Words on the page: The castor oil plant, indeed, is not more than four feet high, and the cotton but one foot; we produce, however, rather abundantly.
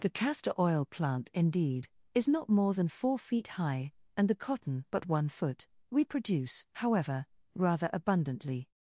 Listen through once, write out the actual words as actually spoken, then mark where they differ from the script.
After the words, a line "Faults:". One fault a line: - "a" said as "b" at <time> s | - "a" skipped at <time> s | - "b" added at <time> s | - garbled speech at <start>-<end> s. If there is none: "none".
The castor oil plant, indeed, is not more than four feet high, and the cotton but one foot; we produce, however, rather abundantly.
Faults:
none